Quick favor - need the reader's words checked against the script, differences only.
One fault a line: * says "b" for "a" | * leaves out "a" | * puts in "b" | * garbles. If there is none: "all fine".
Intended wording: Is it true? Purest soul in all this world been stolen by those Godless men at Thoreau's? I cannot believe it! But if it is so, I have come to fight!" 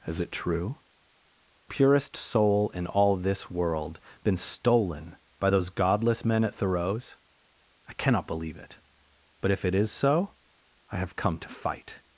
all fine